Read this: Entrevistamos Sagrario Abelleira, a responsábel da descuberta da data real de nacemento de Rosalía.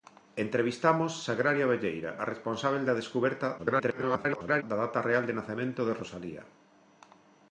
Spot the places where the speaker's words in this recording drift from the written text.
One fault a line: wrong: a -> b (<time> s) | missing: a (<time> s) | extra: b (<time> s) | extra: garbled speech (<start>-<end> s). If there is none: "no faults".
extra: garbled speech (3.6-4.6 s)